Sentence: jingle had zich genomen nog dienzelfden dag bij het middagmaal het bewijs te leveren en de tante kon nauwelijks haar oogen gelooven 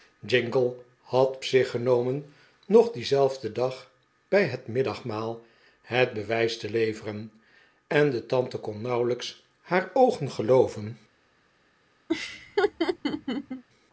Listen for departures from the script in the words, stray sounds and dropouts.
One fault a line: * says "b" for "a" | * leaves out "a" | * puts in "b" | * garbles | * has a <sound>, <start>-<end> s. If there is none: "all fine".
* has a laugh, 12.1-13.6 s